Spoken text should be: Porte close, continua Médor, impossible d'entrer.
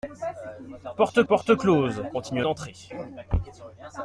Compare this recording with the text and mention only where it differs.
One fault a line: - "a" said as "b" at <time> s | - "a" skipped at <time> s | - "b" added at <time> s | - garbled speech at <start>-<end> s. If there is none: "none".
- "porte" added at 1.3 s
- "Médor impossible" skipped at 2.5 s